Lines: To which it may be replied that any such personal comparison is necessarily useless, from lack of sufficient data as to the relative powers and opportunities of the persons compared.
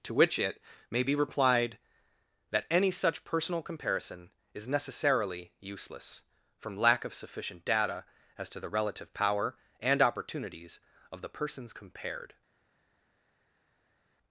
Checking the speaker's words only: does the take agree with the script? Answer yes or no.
no